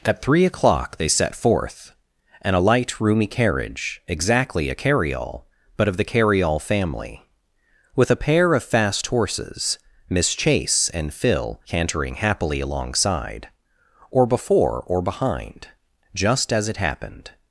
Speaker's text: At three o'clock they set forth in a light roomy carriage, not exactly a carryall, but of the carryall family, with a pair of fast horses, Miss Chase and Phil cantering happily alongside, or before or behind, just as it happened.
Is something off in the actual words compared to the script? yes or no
yes